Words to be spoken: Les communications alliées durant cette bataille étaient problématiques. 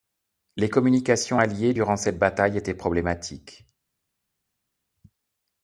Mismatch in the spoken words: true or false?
false